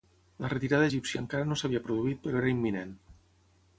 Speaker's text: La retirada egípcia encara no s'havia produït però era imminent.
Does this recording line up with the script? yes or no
yes